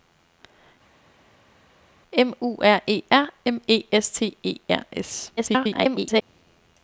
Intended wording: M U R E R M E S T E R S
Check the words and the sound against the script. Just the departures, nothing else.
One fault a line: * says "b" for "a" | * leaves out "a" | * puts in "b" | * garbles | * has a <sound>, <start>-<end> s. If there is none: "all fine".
* garbles